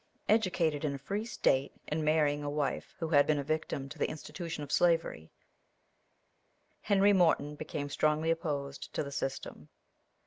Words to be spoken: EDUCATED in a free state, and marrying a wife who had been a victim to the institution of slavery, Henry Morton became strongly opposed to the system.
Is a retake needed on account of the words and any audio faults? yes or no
no